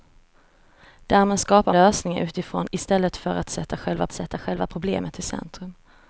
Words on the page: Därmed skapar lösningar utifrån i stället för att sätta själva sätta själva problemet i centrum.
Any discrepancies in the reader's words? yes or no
no